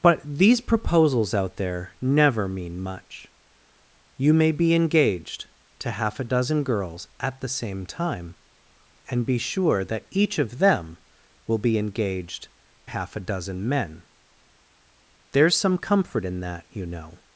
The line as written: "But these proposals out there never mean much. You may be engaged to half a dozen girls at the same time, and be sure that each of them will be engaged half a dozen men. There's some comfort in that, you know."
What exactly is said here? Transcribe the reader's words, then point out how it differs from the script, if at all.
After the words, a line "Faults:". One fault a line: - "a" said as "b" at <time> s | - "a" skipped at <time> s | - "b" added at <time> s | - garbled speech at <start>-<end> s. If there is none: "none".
"But these proposals out there never mean much. You may be engaged to half a dozen girls at the same time, and be sure that each of them will be engaged half a dozen men. There's some comfort in that, you know."
Faults:
none